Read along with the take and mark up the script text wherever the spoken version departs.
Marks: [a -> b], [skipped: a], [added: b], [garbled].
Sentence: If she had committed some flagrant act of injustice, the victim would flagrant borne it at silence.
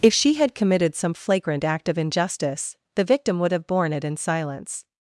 If she had committed some flagrant act of injustice, the victim would [flagrant -> have] borne it [at -> in] silence.